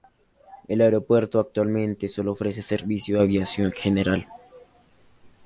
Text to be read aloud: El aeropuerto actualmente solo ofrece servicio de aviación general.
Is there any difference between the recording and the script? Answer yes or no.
no